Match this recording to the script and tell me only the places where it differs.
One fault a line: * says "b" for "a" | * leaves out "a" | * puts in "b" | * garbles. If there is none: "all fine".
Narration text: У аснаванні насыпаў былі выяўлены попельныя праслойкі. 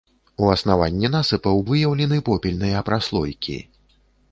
* leaves out "былі"